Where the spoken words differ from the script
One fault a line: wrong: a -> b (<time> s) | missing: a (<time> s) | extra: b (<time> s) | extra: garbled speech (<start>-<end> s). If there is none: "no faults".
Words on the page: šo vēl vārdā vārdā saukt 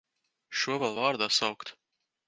missing: vārdā (1.3 s)